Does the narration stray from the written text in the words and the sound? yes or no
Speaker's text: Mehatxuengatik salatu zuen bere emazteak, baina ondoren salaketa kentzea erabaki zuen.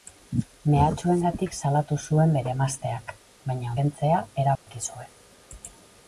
yes